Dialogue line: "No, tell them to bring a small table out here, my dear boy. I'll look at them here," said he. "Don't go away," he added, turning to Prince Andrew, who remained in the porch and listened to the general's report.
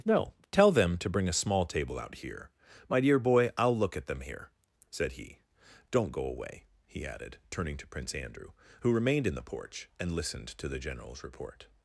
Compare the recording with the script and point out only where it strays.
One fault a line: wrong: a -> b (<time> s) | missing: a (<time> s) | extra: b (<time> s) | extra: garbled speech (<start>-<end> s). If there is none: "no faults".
no faults